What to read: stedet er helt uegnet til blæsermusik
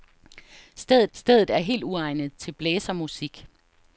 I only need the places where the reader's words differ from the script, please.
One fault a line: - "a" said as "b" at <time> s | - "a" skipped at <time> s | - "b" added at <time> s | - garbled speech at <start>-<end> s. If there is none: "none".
- "stedet" added at 1.1 s